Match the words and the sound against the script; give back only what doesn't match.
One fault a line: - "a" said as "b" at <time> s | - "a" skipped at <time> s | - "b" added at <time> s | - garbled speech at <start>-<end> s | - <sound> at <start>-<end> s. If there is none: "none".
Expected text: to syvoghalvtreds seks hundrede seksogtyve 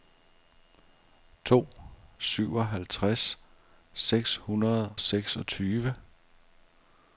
none